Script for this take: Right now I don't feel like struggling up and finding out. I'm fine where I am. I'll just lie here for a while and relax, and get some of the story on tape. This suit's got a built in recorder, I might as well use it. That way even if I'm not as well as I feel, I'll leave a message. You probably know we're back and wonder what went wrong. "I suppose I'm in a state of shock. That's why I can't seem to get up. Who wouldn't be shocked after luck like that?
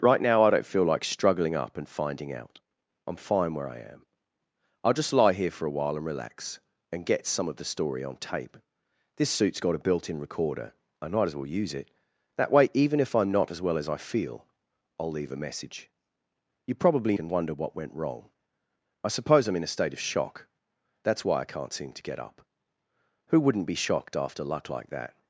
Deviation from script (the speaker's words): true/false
true